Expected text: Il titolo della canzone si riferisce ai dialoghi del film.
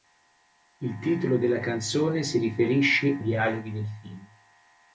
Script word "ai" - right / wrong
wrong